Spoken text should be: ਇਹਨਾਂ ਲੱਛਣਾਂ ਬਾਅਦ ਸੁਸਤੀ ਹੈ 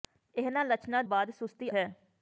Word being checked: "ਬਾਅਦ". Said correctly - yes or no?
yes